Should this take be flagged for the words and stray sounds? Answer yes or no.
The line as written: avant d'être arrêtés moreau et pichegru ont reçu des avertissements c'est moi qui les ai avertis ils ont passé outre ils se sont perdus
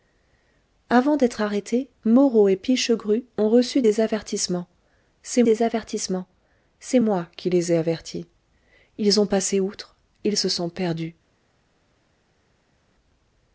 yes